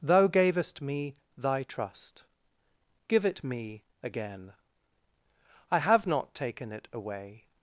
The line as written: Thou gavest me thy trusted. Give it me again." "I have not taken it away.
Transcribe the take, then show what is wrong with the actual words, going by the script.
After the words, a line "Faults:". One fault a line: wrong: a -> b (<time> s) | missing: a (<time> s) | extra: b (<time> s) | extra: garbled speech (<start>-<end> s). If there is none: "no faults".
Thou gavest me thy trust. Give it me again." "I have not taken it away.
Faults:
wrong: trusted -> trust (1.6 s)